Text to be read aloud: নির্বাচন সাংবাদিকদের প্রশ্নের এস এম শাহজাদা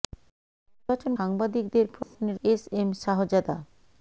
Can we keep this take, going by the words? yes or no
yes